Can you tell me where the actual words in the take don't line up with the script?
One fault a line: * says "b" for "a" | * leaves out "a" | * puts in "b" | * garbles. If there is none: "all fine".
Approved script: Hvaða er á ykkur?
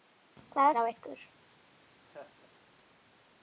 all fine